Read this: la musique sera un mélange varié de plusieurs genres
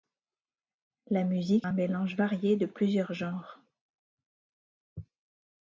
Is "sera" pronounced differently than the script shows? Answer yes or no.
yes